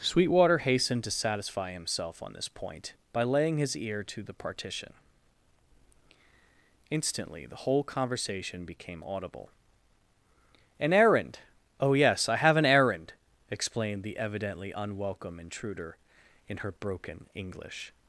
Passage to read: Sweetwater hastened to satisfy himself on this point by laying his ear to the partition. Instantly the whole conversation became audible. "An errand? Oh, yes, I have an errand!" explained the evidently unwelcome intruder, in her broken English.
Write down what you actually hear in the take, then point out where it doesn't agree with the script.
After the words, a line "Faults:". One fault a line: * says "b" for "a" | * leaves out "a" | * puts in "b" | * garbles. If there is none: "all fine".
Sweetwater hastened to satisfy himself on this point by laying his ear to the partition. Instantly the whole conversation became audible. "An errand? Oh, yes, I have an errand!" explained the evidently unwelcome intruder, in her broken English.
Faults:
all fine